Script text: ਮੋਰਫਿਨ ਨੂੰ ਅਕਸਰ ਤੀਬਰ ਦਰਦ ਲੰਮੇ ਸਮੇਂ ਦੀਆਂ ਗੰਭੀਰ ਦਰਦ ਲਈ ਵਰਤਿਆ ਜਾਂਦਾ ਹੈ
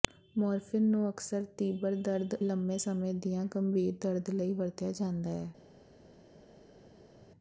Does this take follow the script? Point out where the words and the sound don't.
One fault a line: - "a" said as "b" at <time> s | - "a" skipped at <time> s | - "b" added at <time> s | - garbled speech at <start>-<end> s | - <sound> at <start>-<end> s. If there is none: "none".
none